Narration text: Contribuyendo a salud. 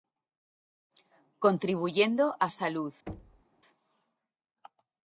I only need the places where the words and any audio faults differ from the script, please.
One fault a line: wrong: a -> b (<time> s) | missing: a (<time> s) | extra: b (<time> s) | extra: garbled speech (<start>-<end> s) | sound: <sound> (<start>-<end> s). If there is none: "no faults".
sound: thud (3.1-3.4 s)